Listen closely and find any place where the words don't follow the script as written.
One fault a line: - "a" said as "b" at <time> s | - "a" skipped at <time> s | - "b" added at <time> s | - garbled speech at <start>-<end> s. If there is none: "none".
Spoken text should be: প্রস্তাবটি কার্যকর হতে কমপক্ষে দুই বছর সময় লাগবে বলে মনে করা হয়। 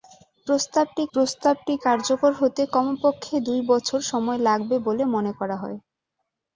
- "প্রস্তাবটি" added at 1.1 s